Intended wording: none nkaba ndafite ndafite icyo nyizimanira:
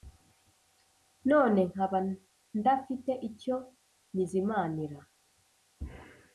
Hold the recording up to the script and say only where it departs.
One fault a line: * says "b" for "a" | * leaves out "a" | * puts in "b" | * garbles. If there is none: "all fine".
* leaves out "ndafite"